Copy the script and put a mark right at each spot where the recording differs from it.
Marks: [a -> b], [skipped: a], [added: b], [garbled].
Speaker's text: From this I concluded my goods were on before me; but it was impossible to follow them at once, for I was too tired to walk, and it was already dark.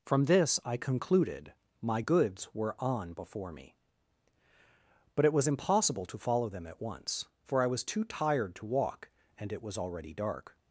From this I concluded my goods were on before me; but it was impossible to follow them at once, for I was too tired to walk, and it was already dark.